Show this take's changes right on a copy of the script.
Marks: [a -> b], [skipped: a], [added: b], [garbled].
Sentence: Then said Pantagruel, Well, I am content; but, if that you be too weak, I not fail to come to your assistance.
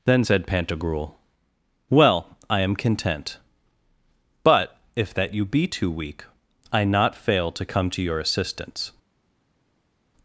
Then said Pantagruel, Well, I am content; but, if that you be too weak, I not fail to come to your assistance.